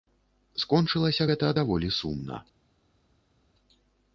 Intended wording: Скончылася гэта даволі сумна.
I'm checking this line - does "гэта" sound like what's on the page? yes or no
yes